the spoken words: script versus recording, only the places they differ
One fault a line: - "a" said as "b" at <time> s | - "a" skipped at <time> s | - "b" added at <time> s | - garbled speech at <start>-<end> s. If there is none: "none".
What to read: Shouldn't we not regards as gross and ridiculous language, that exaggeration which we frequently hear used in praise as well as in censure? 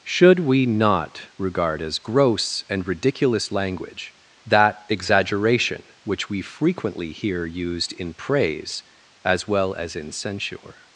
- "Shouldn't" said as "Should" at 0.0 s
- "regards" said as "regard" at 1.4 s